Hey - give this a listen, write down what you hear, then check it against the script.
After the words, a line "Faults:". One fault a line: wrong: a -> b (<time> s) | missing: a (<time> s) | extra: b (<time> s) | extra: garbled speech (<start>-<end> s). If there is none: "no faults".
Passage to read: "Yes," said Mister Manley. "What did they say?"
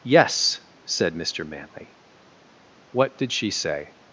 "Yes," said Mister Manley. "What did she say?"
Faults:
wrong: they -> she (3.3 s)